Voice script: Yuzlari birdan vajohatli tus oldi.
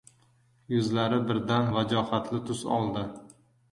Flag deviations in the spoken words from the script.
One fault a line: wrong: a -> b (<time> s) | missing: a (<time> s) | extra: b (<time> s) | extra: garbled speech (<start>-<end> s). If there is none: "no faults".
no faults